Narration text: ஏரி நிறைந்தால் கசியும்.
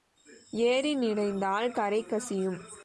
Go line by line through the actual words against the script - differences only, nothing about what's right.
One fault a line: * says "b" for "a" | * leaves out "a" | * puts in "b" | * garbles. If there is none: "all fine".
* puts in "கரை"